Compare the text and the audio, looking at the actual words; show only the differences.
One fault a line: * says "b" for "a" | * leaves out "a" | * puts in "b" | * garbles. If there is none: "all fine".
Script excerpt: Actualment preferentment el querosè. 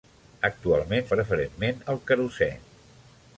all fine